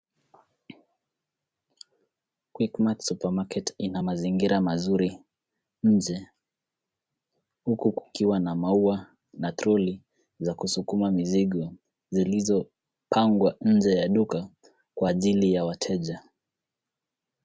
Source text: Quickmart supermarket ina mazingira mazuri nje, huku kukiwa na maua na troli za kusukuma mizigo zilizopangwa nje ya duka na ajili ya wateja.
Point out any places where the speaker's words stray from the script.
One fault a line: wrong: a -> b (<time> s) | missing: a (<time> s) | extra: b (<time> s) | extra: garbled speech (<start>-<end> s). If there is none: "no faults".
wrong: na -> kwa (14.9 s)